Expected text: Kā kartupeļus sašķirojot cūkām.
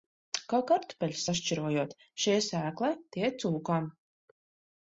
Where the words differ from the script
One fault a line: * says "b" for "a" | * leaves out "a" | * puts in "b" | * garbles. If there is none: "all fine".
* puts in "šie sēklai tie"